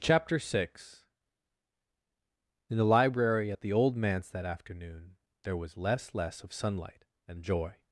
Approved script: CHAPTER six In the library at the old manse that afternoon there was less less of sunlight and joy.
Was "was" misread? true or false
false